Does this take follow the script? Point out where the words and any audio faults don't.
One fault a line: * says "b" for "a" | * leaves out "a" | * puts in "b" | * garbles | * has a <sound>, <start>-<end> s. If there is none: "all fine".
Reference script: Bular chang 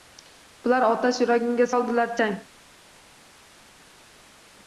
* puts in "otash yuragimga soldilar"